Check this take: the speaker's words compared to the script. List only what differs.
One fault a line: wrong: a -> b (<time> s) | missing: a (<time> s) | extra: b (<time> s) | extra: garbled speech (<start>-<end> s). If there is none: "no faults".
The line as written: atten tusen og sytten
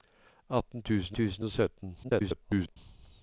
extra: tusen (1.2 s)
extra: garbled speech (2.0-2.8 s)